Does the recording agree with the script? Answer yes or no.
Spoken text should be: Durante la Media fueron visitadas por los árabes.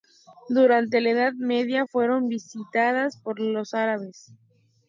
no